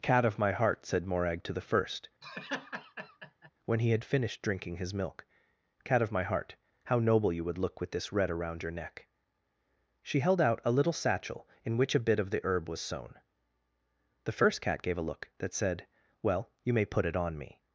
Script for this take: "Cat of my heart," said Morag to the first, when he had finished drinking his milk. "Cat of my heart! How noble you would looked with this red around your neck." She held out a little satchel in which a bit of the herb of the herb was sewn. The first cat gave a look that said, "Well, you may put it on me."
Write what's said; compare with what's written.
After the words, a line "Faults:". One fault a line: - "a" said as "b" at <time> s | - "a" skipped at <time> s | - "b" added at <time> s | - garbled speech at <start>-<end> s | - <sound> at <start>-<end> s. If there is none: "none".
"Cat of my heart," said Morag to the first, when he had finished drinking his milk. "Cat of my heart! How noble you would look with this red around your neck." She held out a little satchel in which a bit of the herb was sewn. The first cat gave a look that said, "Well, you may put it on me."
Faults:
- laugh at 2.2-3.5 s
- "looked" said as "look" at 7.6 s
- "of the herb" skipped at 12.7 s